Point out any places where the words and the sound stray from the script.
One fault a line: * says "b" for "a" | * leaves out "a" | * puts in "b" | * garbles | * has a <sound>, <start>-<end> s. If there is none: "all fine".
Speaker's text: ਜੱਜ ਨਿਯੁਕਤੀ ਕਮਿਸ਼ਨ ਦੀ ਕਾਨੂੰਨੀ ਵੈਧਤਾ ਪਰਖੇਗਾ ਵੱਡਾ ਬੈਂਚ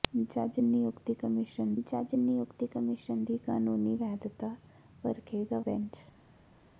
* puts in "ਜੱਜ ਨਿਯੁਕਤੀ ਕਮਿਸ਼ਨ"
* leaves out "ਵੱਡਾ"